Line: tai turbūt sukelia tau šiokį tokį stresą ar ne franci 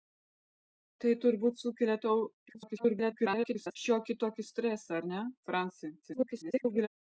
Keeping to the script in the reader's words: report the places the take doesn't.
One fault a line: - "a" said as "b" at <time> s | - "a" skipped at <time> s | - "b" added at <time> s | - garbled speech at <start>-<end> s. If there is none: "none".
- garbled speech at 2.5-3.8 s
- garbled speech at 6.0-6.9 s